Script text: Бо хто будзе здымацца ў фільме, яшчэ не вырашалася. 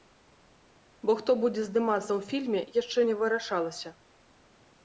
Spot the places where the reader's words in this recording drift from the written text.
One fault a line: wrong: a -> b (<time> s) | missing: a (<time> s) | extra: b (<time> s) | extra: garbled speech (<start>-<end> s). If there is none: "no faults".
no faults